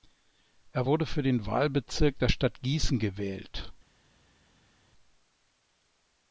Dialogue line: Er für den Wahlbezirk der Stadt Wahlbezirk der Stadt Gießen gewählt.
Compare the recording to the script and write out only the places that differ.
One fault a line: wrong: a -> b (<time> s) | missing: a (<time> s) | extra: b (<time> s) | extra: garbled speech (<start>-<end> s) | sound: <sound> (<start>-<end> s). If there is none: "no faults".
extra: wurde (0.8 s)
missing: Wahlbezirk der Stadt (2.6 s)